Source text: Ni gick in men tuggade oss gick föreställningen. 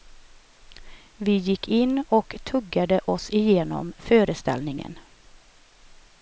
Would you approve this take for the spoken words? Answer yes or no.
no